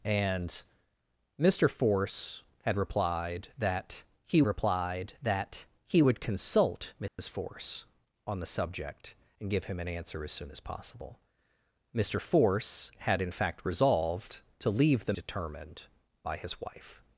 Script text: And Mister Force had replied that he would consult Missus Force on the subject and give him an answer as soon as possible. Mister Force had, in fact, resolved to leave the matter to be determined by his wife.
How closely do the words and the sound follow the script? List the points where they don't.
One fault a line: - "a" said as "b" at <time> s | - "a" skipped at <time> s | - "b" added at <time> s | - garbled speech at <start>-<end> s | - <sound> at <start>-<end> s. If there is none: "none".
- "replied that he" added at 4.5 s
- dropout at 7.1-7.2 s
- "matter to be" skipped at 15.1 s